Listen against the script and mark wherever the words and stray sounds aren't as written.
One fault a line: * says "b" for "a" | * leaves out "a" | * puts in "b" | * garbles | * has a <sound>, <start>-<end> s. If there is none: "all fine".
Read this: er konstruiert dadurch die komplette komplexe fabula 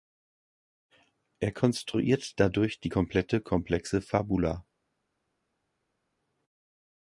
all fine